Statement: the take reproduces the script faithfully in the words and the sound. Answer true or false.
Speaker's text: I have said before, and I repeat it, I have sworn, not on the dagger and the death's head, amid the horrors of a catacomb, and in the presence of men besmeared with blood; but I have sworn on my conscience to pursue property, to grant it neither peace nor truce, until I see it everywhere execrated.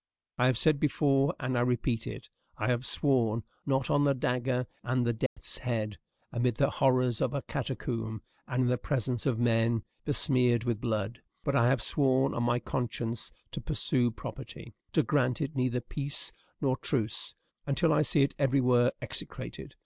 false